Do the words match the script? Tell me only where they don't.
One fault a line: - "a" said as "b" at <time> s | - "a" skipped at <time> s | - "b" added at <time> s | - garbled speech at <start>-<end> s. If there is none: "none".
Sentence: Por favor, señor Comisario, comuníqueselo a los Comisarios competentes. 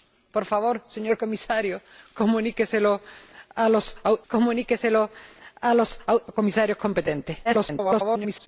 - "comuníqueselo a los" added at 4.3 s
- garbled speech at 7.4-8.5 s